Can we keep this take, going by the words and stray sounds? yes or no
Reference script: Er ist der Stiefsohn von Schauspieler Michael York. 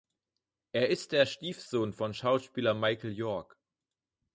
yes